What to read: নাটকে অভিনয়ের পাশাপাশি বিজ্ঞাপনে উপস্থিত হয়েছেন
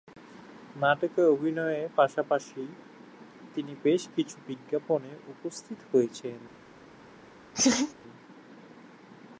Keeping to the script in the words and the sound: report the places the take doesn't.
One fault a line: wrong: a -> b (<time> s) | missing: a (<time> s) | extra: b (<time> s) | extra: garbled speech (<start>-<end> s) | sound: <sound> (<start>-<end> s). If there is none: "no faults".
extra: তিনি বেশ কিছু (3.5 s)
sound: laugh (7.5-7.9 s)